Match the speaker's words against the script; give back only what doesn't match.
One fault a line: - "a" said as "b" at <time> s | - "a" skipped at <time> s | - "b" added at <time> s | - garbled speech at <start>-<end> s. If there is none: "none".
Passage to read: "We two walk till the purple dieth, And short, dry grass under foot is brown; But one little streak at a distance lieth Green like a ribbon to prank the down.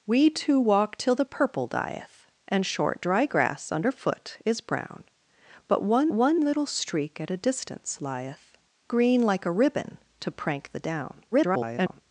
- "one" added at 6.1 s
- garbled speech at 11.3-12.0 s